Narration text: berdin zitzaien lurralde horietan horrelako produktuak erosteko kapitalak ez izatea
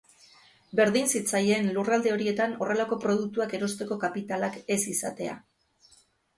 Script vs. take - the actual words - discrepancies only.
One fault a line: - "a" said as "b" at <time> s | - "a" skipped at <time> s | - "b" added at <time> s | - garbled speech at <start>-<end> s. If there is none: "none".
none